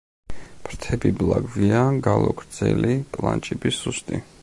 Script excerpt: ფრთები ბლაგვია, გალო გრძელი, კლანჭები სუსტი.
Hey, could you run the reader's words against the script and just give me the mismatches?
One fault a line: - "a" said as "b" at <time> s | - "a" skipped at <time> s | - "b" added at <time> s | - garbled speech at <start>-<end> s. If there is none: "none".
none